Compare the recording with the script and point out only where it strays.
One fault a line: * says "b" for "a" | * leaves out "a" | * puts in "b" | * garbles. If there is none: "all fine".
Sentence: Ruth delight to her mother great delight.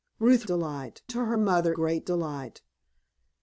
all fine